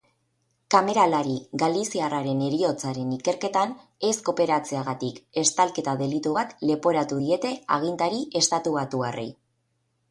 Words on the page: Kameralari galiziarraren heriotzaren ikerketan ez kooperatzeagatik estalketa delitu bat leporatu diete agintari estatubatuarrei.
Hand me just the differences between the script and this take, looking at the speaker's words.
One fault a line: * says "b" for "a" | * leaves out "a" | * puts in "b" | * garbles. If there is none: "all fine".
all fine